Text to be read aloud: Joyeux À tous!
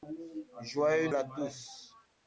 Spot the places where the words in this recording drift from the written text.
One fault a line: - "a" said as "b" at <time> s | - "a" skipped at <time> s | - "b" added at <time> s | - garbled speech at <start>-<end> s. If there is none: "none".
none